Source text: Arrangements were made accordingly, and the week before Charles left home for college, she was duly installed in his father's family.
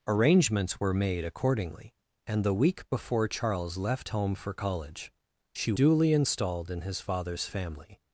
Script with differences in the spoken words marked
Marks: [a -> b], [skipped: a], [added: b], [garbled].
Arrangements were made accordingly, and the week before Charles left home for college, she [skipped: was] duly installed in his father's family.